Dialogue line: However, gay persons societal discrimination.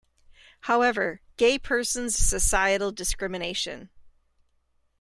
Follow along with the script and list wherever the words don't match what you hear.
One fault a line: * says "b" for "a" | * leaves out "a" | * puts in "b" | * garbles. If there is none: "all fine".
all fine